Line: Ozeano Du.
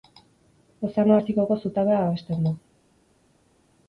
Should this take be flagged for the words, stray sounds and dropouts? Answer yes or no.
yes